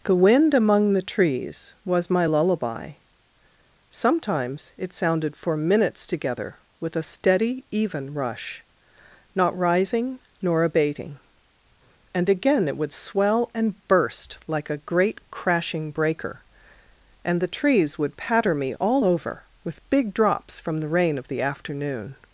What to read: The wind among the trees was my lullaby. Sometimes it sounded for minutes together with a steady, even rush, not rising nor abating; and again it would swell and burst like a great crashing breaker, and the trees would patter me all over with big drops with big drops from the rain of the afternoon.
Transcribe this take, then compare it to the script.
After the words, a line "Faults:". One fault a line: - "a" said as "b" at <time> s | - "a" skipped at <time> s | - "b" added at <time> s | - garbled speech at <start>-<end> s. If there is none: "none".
The wind among the trees was my lullaby. Sometimes it sounded for minutes together with a steady, even rush, not rising nor abating; and again it would swell and burst like a great crashing breaker, and the trees would patter me all over with big drops from the rain of the afternoon.
Faults:
- "with big drops" skipped at 20.6 s